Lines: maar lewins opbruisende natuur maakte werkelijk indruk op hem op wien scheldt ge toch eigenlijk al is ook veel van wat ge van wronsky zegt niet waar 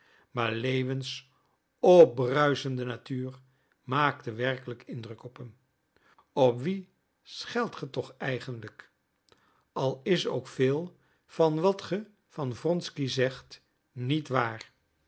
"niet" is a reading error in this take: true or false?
false